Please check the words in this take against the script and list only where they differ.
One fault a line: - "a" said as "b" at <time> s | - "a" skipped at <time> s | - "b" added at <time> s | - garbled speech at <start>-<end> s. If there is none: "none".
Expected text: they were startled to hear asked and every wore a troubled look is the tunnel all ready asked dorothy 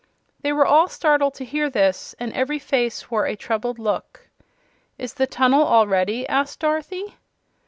- "all" added at 0.7 s
- "asked" said as "this" at 1.7 s
- "face" added at 2.6 s